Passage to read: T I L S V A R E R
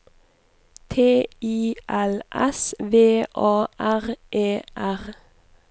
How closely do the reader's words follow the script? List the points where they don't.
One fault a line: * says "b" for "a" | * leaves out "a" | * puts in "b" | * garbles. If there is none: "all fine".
all fine